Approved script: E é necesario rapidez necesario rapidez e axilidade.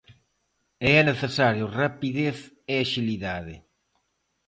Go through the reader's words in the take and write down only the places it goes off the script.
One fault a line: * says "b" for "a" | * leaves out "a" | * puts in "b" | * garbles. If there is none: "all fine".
* leaves out "necesario rapidez"